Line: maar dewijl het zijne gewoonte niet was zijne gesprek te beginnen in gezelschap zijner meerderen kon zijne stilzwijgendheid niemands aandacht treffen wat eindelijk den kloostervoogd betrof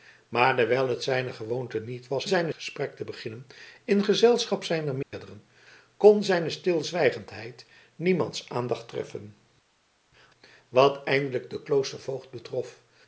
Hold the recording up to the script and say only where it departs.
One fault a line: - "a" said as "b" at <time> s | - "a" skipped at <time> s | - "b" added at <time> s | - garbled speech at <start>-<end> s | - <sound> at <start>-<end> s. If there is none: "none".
- dropout at 5.0-5.1 s